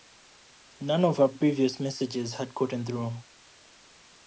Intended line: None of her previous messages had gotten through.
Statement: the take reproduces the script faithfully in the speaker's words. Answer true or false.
true